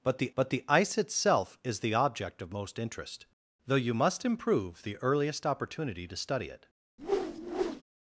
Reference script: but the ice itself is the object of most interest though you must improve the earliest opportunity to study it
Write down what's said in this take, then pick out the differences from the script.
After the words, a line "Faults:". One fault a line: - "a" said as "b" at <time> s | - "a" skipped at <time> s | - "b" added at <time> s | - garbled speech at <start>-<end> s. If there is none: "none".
but the but the ice itself is the object of most interest though you must improve the earliest opportunity to study it
Faults:
- "but the" added at 0.3 s